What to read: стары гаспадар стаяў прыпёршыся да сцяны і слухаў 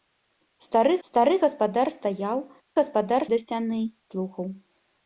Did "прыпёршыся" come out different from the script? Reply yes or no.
yes